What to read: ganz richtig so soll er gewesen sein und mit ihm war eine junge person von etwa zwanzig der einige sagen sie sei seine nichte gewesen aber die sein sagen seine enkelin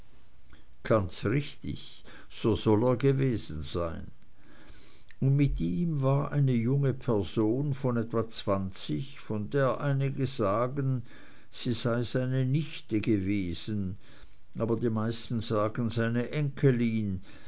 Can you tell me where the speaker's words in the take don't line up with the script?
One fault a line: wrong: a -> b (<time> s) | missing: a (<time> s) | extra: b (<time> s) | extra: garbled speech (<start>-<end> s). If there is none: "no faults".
extra: von (9.2 s)
wrong: sein -> meisten (14.9 s)